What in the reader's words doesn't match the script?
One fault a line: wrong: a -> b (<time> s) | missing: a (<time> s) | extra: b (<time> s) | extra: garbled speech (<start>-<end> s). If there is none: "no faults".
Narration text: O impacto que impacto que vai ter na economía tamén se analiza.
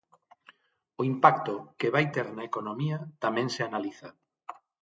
missing: impacto que (1.9 s)